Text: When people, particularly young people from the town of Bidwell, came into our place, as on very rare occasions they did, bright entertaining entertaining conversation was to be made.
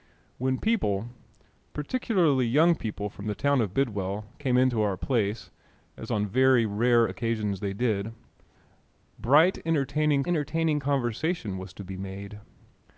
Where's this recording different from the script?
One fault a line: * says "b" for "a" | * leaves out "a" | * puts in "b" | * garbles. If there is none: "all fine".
all fine